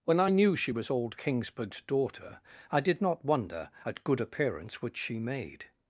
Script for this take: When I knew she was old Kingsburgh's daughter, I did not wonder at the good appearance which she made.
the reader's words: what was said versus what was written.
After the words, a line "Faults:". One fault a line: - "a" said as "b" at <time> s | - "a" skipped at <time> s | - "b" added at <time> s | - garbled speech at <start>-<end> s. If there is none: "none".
When I knew she was old Kingsburgh's daughter, I did not wonder at good appearance which she made.
Faults:
- "the" skipped at 4.0 s